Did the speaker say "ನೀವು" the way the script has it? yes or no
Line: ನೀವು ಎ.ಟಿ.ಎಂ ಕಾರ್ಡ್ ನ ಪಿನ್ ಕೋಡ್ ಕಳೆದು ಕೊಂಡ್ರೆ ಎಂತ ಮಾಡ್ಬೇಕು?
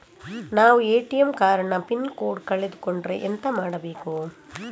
no